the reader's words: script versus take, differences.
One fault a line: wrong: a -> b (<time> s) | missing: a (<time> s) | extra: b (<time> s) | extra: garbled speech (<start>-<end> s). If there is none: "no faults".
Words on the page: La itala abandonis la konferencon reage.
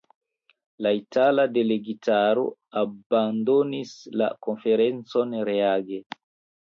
extra: delegitaro (1.6 s)